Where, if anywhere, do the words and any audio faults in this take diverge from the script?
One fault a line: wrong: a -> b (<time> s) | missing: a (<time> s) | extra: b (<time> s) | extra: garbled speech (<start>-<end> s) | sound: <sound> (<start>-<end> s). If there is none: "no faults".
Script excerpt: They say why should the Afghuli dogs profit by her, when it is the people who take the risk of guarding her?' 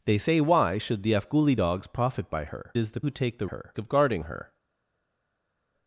missing: when it (2.7 s)
missing: people (3.0 s)
wrong: risk -> her (3.4 s)